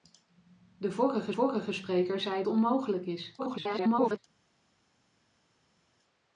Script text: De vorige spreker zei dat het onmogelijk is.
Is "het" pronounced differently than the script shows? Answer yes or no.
yes